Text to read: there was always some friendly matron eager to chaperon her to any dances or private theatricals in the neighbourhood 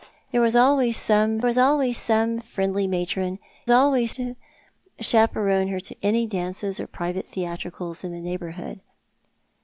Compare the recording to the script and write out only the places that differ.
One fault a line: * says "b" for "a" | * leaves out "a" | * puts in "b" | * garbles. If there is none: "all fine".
* puts in "was always some"
* says "always" for "eager"